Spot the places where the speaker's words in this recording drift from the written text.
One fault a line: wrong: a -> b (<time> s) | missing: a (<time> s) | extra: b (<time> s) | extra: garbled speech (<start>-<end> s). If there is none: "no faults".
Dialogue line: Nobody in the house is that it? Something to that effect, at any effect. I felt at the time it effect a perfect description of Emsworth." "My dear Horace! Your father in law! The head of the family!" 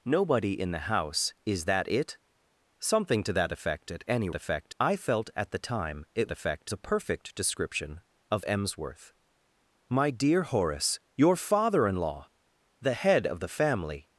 no faults